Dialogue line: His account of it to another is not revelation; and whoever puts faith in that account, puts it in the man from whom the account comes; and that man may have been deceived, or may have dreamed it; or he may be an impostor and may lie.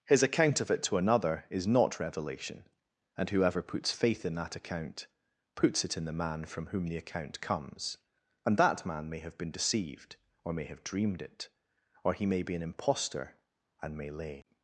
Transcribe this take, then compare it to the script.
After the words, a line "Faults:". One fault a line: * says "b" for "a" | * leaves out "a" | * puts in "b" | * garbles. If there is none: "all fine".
His account of it to another is not revelation; and whoever puts faith in that account, puts it in the man from whom the account comes; and that man may have been deceived, or may have dreamed it; or he may be an impostor and may lay.
Faults:
* says "lay" for "lie"